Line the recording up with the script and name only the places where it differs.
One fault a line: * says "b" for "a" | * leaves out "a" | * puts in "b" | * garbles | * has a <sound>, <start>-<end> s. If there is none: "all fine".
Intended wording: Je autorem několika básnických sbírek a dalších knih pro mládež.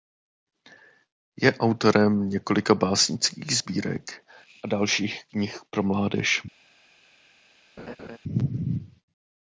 * has a laugh, 7.8-8.2 s